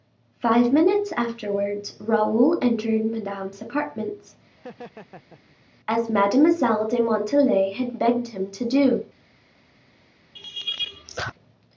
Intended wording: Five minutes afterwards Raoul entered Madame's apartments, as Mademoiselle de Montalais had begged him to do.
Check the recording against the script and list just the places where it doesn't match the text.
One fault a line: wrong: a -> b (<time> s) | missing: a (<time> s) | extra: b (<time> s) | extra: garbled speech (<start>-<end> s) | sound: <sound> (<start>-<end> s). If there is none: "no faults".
sound: laugh (4.5-5.6 s)
sound: laugh (10.4-11.3 s)